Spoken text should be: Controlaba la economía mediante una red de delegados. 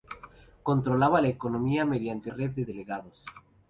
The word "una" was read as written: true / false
false